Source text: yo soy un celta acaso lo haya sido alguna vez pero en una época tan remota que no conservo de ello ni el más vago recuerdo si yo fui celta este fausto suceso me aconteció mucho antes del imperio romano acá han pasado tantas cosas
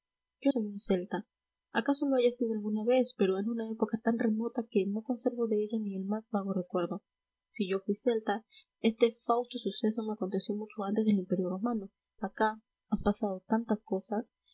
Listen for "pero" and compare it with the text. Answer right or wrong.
right